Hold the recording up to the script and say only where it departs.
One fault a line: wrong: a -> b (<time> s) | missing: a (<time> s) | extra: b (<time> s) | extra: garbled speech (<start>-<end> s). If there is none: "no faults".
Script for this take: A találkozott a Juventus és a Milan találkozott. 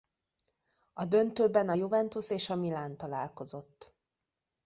wrong: találkozott -> döntőben (1.1 s)